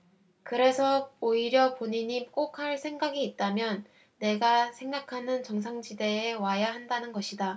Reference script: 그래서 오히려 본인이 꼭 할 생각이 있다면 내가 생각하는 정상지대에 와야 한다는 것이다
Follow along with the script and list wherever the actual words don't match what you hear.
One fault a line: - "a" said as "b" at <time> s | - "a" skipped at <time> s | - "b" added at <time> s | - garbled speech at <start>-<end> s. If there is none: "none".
none